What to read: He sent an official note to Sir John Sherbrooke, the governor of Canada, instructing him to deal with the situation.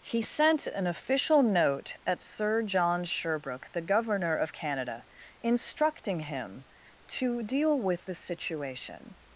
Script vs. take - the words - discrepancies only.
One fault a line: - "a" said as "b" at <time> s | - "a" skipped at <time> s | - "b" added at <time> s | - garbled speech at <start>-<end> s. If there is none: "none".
- "to" said as "at" at 2.0 s